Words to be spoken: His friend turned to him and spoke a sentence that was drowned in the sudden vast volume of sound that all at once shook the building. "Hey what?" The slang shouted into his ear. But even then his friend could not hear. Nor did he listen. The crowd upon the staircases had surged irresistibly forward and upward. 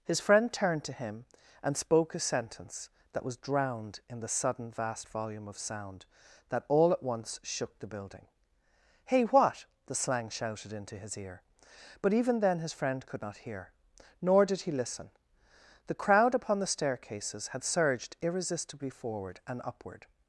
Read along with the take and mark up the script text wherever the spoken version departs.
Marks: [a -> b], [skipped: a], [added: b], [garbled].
His friend turned to him and spoke a sentence that was drowned in the sudden vast volume of sound that all at once shook the building. "Hey what?" The slang shouted into his ear. But even then his friend could not hear. Nor did he listen. The crowd upon the staircases had surged irresistibly forward and upward.